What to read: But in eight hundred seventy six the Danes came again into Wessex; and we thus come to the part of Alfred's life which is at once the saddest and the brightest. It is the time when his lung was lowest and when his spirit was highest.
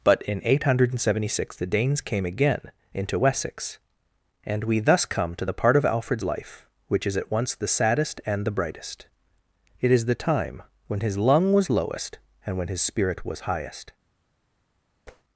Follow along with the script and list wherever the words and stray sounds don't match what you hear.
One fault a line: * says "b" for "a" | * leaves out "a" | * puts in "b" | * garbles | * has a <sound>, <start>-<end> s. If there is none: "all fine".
* has a tap, 15.1-15.2 s